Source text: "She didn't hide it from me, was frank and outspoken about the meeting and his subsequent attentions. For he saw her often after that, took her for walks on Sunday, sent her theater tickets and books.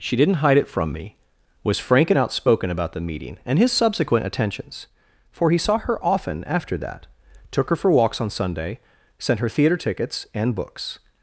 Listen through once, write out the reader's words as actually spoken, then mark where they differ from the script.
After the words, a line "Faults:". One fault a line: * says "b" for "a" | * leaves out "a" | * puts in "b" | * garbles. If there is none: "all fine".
"She didn't hide it from me, was frank and outspoken about the meeting and his subsequent attentions. For he saw her often after that, took her for walks on Sunday, sent her theater tickets and books.
Faults:
all fine